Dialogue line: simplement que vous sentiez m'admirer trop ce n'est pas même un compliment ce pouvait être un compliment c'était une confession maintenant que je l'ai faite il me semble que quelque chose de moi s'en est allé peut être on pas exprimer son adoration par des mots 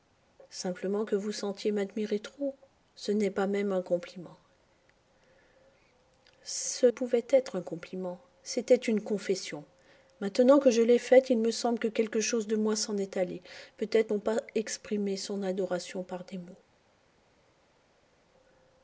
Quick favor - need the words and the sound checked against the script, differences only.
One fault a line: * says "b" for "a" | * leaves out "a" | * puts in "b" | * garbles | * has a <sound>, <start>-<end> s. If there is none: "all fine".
all fine